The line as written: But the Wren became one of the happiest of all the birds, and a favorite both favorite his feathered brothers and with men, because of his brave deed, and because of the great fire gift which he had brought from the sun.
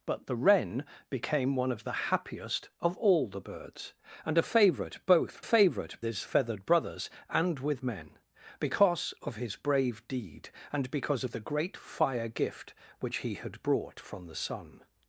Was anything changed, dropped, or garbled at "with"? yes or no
no